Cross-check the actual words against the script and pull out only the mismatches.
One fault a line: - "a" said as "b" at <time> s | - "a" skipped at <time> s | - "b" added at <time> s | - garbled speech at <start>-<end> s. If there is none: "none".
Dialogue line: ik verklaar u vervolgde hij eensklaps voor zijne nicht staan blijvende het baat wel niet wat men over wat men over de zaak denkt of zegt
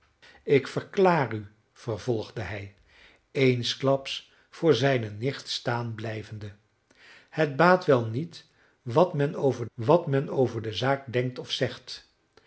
none